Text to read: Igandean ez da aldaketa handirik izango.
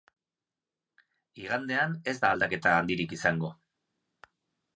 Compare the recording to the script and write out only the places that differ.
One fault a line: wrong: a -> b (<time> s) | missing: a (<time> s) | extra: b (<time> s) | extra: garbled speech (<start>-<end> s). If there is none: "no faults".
no faults